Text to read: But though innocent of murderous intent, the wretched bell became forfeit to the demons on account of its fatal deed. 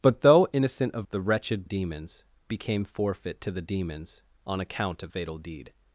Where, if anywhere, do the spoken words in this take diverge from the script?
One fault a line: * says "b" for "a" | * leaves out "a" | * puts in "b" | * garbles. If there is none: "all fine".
* leaves out "murderous intent"
* says "demons" for "bell"
* leaves out "its"